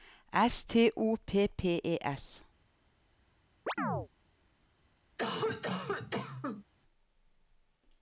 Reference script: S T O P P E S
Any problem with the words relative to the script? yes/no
no